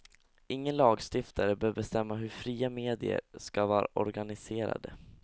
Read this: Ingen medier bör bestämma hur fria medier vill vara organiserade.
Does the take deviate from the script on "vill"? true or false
true